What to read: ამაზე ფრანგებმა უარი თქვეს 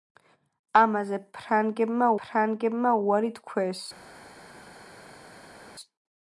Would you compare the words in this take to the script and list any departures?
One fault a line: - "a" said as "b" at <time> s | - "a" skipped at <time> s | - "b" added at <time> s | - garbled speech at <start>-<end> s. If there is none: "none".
- "ფრანგებმა" added at 2.2 s